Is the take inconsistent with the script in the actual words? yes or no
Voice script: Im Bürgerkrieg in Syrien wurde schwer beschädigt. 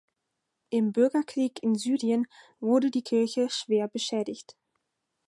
yes